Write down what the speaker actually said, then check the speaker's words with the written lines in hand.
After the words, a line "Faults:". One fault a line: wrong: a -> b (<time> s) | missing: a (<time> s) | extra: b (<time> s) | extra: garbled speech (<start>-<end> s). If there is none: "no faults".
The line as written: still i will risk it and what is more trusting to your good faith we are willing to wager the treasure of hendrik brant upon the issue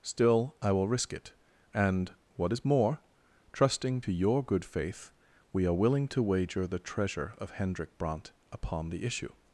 still i will risk it and what is more trusting to your good faith we are willing to wager the treasure of hendrik brant upon the issue
Faults:
no faults